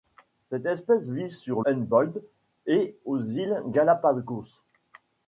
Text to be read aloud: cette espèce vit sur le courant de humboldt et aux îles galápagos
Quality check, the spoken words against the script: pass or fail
fail